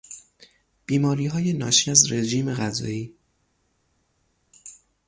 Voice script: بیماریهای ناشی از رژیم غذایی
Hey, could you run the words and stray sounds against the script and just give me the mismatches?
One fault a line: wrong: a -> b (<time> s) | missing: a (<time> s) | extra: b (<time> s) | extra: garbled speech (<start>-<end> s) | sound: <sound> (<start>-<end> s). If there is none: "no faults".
no faults